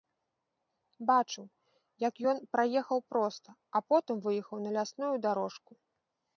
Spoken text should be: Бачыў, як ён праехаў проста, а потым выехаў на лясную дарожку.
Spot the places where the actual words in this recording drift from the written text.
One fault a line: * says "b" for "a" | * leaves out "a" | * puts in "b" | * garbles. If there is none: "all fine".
all fine